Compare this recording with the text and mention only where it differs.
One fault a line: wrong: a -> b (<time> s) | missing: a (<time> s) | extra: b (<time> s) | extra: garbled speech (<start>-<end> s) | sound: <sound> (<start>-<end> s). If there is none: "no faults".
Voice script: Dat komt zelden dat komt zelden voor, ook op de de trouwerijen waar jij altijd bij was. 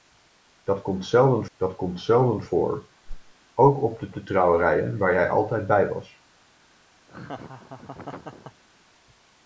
sound: whoosh (3.1-3.3 s)
sound: laugh (7.1-8.6 s)